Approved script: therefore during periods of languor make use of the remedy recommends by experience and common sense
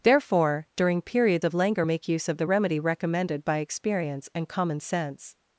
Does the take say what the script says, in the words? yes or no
no